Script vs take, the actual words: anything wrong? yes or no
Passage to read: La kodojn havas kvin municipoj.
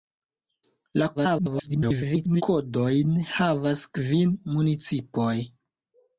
yes